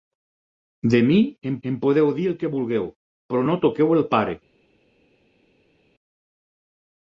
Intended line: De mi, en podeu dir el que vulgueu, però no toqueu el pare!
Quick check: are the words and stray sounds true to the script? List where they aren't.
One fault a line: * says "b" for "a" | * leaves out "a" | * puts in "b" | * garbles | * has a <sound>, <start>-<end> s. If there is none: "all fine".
* puts in "en"